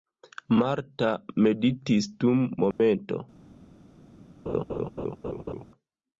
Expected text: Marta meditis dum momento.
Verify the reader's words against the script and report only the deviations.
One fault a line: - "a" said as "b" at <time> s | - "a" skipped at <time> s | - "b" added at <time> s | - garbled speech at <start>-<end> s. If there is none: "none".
none